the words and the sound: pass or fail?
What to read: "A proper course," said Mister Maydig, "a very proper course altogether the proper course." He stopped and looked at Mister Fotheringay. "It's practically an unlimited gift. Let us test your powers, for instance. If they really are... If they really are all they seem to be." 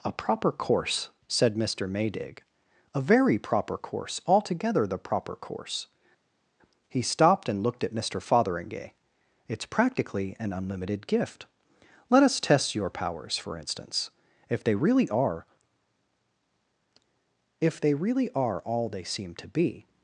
pass